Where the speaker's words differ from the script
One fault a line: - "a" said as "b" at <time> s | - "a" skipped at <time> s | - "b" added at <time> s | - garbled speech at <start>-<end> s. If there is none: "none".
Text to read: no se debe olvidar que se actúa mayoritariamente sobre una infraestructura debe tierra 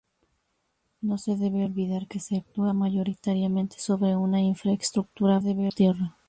none